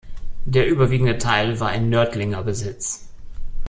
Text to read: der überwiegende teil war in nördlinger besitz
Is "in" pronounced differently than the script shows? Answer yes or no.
no